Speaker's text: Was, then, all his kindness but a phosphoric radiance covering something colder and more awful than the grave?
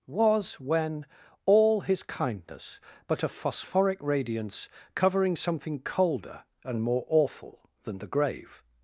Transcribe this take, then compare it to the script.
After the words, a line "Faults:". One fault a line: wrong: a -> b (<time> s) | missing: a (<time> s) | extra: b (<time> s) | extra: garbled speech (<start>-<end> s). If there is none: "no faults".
Was, when, all his kindness but a phosphoric radiance covering something colder and more awful than the grave?
Faults:
wrong: then -> when (0.6 s)